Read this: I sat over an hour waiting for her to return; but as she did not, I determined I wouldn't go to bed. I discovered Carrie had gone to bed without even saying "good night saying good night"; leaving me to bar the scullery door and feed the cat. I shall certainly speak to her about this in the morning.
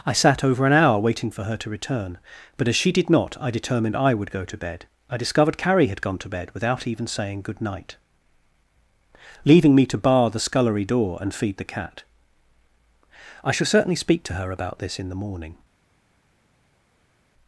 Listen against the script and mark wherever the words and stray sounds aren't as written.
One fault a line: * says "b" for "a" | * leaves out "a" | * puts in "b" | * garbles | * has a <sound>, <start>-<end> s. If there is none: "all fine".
* says "would" for "wouldn't"
* leaves out "saying good night"